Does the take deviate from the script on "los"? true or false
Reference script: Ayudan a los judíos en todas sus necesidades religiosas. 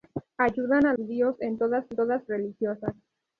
true